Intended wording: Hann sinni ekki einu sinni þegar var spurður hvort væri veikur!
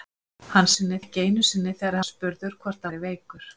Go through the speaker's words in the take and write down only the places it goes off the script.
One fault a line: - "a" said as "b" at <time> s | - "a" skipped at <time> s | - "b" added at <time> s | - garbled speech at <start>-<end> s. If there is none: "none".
none